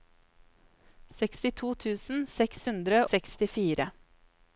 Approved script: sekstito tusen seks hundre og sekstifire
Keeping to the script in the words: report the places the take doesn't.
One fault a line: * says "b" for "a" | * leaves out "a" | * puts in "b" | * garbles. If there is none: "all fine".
* leaves out "og"